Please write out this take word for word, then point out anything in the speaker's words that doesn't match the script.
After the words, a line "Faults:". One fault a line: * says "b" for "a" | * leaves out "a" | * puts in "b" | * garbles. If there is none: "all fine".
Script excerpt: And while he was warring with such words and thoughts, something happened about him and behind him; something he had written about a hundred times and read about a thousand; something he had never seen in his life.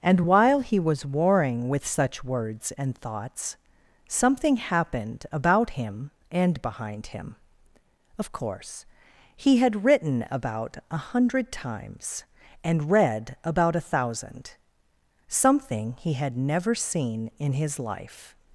And while he was warring with such words and thoughts, something happened about him and behind him; of course he had written about a hundred times and read about a thousand; something he had never seen in his life.
Faults:
* says "of course" for "something"